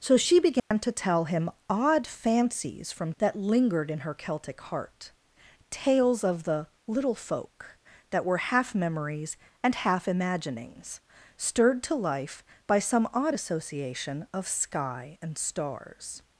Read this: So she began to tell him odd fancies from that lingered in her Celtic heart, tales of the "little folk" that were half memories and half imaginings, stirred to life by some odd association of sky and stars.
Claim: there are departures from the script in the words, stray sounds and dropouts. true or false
true